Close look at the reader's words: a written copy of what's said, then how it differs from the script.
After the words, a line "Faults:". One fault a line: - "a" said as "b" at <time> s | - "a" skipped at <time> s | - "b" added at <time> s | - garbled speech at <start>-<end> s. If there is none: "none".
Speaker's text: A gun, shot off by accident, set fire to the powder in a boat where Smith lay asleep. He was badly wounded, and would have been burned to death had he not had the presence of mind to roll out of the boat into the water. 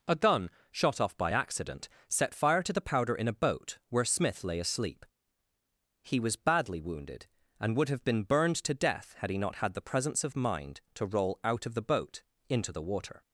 A gun, shot off by accident, set fire to the powder in a boat where Smith lay asleep. He was badly wounded, and would have been burned to death had he not had the presence of mind to roll out of the boat into the water.
Faults:
none